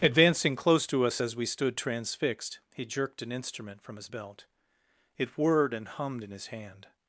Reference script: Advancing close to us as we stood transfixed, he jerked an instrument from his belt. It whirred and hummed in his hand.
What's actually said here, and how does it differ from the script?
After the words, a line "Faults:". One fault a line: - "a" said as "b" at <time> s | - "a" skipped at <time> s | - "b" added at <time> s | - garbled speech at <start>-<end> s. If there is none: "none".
Advancing close to us as we stood transfixed, he jerked an instrument from his belt. It whirred and hummed in his hand.
Faults:
none